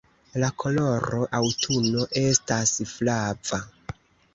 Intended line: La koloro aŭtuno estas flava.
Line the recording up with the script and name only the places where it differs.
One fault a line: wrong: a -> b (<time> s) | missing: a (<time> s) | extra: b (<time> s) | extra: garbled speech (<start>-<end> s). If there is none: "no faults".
no faults